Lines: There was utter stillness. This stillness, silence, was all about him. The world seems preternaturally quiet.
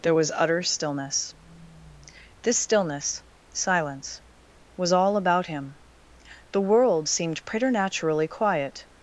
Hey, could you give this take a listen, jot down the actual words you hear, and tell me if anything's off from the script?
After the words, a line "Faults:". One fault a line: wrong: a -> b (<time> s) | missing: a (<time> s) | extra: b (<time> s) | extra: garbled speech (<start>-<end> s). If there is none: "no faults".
There was utter stillness. This stillness, silence, was all about him. The world seemed preternaturally quiet.
Faults:
wrong: seems -> seemed (7.1 s)